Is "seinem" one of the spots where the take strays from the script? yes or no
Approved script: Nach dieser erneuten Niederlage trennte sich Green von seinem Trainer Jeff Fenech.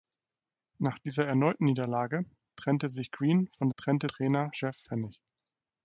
yes